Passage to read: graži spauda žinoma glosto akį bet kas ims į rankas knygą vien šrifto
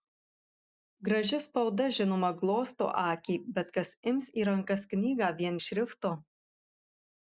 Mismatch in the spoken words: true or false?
false